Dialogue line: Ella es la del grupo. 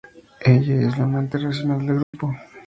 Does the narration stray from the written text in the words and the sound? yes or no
yes